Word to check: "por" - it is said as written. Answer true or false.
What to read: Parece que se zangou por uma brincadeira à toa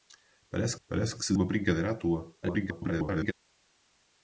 false